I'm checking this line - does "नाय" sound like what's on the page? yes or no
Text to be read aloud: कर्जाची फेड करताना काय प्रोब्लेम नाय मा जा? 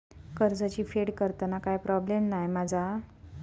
yes